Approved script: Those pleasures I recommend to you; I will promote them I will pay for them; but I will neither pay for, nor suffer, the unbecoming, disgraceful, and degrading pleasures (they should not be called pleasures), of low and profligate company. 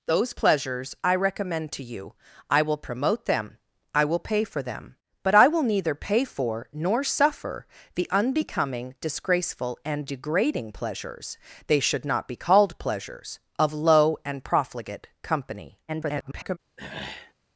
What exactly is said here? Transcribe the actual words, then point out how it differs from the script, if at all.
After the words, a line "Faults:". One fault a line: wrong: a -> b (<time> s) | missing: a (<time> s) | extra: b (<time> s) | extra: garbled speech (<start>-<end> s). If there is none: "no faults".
Those pleasures I recommend to you; I will promote them I will pay for them; but I will neither pay for, nor suffer, the unbecoming, disgraceful, and degrading pleasures (they should not be called pleasures), of low and profligate company. [garbled]
Faults:
extra: garbled speech (15.9-16.6 s)